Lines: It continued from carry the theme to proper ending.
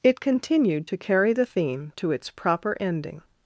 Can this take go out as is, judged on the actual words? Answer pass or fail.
fail